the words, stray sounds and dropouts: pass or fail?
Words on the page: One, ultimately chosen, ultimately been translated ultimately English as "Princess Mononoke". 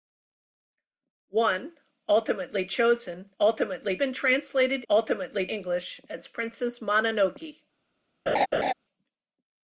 fail